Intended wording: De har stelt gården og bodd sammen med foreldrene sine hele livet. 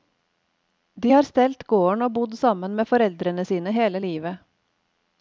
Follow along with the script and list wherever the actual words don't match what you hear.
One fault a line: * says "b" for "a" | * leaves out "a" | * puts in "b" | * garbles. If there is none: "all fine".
all fine